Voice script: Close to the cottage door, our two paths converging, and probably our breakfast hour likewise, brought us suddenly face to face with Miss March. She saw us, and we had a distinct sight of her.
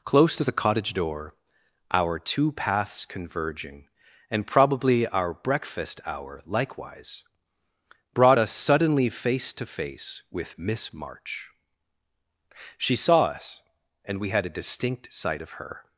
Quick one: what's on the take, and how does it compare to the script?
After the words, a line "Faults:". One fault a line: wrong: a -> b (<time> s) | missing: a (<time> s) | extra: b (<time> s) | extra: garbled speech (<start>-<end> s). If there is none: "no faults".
Close to the cottage door, our two paths converging, and probably our breakfast hour likewise, brought us suddenly face to face with Miss March. She saw us, and we had a distinct sight of her.
Faults:
no faults